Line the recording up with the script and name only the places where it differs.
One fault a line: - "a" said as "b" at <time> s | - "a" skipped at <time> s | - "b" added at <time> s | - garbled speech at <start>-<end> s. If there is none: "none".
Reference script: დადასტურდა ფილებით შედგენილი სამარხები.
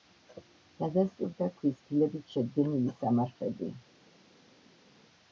- "ქვის" added at 1.6 s